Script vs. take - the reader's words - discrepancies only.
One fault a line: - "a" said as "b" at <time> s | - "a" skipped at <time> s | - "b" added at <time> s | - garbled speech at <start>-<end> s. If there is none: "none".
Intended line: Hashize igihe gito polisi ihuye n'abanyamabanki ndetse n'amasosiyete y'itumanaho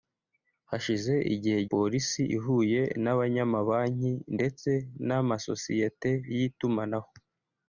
- "gito" skipped at 1.6 s